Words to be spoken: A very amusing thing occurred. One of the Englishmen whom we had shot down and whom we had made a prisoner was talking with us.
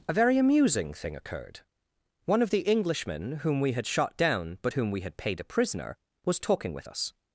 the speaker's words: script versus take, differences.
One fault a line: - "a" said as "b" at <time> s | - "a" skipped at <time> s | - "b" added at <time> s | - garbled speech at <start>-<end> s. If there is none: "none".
- "and" said as "but" at 4.6 s
- "made" said as "paid" at 5.2 s